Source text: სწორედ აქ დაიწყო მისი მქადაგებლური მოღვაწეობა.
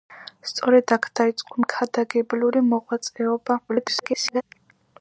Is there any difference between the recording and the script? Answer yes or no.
yes